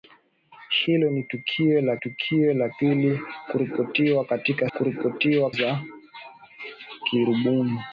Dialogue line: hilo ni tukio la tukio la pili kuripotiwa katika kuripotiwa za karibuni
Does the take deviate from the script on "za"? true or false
false